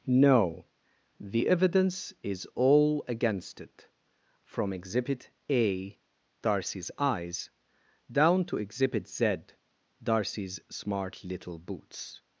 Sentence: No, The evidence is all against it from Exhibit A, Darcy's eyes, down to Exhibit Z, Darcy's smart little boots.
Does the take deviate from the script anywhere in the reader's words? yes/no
no